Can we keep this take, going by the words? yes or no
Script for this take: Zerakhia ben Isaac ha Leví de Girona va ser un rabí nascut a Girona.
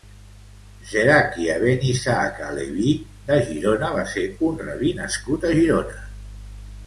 yes